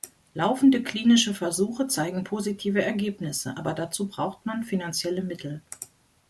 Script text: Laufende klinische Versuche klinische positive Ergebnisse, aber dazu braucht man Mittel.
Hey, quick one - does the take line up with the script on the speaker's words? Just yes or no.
no